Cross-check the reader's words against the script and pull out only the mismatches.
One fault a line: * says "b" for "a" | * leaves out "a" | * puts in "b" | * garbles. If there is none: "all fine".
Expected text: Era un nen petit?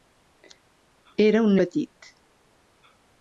* leaves out "nen"